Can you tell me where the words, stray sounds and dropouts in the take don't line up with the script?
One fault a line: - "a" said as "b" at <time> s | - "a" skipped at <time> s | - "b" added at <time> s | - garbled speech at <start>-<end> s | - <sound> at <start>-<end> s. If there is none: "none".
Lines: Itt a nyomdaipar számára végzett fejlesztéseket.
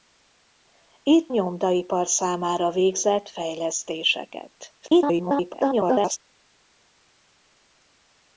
- "a" skipped at 1.4 s
- garbled speech at 4.8-6.2 s